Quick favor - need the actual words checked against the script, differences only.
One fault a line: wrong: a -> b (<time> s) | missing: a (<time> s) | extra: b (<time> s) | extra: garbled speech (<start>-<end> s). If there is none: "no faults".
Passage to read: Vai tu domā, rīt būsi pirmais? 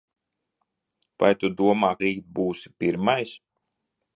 no faults